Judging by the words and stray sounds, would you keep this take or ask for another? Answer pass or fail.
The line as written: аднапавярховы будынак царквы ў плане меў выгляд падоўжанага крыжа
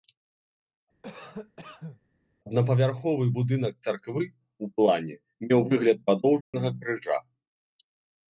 fail